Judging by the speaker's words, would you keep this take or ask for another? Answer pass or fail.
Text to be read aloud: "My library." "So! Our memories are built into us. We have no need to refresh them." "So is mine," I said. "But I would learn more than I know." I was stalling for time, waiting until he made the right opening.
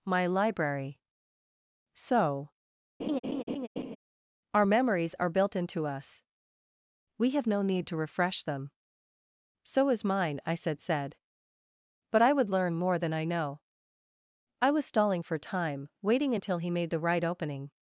fail